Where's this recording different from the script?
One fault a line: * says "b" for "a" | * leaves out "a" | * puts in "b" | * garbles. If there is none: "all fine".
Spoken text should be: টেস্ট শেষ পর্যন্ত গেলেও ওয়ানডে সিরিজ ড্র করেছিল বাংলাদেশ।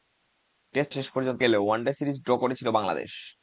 all fine